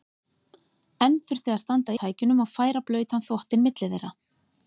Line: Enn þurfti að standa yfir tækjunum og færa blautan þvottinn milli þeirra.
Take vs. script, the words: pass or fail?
fail